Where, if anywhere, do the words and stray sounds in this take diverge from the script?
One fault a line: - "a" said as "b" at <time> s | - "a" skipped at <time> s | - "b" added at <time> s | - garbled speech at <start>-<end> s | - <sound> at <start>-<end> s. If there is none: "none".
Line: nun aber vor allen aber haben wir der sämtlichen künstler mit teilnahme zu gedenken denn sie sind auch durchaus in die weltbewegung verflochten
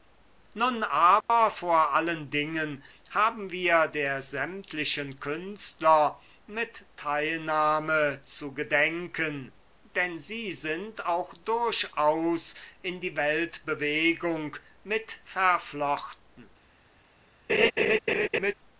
- dropout at 1.2-1.3 s
- "aber" said as "dingen" at 2.3 s
- "mit" added at 14.8 s
- laugh at 17.5-18.5 s